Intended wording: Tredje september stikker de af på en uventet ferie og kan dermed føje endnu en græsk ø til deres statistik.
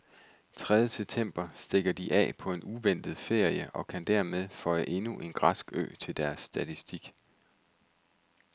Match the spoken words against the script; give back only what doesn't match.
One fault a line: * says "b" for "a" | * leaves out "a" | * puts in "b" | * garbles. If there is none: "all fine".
all fine